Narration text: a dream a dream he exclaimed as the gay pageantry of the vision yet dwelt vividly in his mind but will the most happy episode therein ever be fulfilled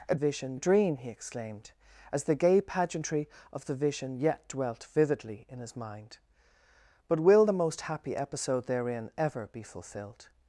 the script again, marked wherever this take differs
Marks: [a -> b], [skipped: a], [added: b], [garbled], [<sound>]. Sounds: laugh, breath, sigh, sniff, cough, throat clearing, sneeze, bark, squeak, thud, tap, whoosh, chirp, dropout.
a [dream -> vision] a dream he exclaimed as the gay pageantry of the vision yet dwelt vividly in his mind but will the most happy episode therein ever be fulfilled